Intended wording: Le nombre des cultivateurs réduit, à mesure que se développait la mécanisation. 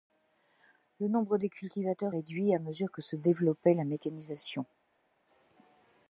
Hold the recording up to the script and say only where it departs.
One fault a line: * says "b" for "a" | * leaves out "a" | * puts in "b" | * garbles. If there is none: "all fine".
all fine